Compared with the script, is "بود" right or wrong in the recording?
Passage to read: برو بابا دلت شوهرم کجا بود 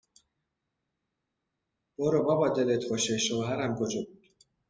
right